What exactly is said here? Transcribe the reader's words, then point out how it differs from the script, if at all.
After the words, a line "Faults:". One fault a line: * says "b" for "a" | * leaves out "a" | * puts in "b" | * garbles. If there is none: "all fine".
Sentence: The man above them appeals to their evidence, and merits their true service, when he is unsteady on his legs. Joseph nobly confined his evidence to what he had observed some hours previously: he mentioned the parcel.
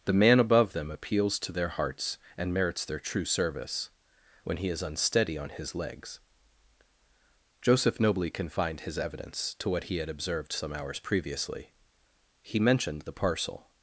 The man above them appeals to their hearts, and merits their true service, when he is unsteady on his legs. Joseph nobly confined his evidence to what he had observed some hours previously: he mentioned the parcel.
Faults:
* says "hearts" for "evidence"